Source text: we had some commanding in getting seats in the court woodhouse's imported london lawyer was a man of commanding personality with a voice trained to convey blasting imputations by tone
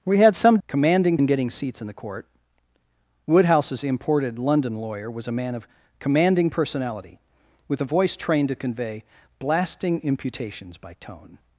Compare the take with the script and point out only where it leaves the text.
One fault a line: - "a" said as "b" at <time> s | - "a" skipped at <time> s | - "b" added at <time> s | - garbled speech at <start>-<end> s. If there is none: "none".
none